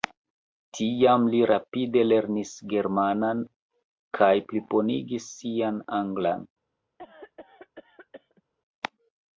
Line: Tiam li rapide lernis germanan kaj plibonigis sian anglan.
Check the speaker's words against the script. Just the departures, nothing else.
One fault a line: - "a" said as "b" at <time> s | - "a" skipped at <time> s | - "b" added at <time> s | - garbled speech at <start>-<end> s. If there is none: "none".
none